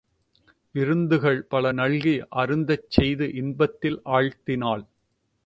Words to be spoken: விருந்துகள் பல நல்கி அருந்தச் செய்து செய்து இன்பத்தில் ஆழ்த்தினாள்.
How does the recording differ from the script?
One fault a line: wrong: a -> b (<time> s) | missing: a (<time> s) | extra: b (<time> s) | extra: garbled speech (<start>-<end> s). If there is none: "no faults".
missing: செய்து (3.3 s)